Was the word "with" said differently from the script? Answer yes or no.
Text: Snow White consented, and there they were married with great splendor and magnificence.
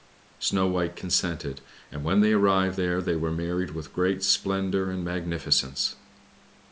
no